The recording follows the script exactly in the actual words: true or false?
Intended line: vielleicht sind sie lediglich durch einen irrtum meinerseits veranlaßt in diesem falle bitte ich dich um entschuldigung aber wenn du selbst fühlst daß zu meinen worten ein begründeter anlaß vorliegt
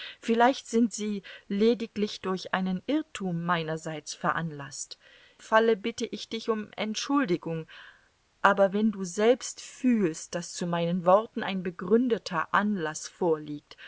false